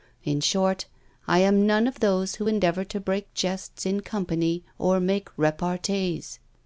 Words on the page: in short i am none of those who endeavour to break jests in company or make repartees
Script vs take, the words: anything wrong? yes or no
no